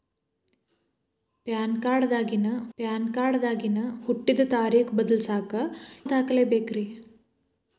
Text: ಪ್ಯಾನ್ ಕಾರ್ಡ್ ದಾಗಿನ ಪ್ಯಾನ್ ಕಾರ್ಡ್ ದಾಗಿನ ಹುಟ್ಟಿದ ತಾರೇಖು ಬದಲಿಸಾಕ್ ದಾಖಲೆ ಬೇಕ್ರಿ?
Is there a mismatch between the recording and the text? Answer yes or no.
no